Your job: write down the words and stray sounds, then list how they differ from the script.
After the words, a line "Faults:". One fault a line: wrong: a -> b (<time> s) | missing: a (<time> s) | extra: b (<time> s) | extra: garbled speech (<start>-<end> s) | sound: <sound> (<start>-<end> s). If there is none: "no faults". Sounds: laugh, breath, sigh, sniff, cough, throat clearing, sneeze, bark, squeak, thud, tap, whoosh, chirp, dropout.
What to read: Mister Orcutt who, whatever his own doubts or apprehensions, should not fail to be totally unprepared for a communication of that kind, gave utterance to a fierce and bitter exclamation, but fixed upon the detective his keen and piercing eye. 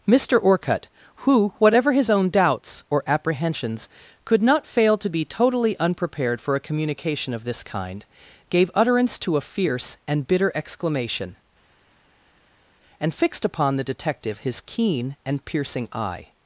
Mister Orcutt who, whatever his own doubts or apprehensions, could not fail to be totally unprepared for a communication of this kind, gave utterance to a fierce and bitter exclamation, and fixed upon the detective his keen and piercing eye.
Faults:
wrong: should -> could (4.2 s)
wrong: that -> this (7.4 s)
wrong: but -> and (13.0 s)